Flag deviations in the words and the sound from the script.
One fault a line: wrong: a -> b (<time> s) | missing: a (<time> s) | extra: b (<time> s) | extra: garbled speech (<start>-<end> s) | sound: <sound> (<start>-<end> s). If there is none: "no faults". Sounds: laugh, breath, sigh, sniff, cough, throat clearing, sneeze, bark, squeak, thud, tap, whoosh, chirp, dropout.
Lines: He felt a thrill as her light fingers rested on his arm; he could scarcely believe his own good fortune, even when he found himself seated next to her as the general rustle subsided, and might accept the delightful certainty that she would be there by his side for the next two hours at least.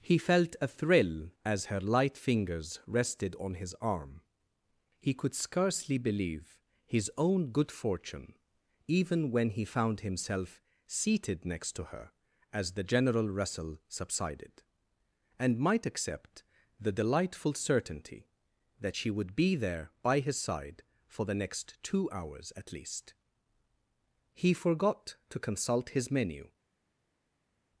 extra: He forgot to consult his menu (24.3 s)